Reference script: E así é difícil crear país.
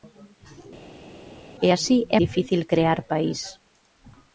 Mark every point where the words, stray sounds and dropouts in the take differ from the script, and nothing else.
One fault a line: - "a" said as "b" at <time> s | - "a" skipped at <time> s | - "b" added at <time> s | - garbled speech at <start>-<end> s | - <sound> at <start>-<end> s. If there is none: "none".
none